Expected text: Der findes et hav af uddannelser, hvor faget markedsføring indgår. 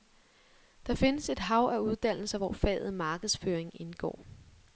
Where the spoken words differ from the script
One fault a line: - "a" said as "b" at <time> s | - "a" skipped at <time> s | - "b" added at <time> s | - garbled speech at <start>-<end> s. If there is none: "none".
none